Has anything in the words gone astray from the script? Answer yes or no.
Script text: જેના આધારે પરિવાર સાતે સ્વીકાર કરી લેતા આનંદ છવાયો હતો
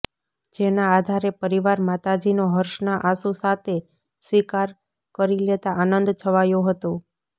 yes